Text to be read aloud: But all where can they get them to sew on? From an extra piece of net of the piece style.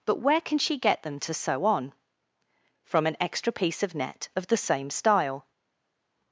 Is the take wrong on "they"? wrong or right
wrong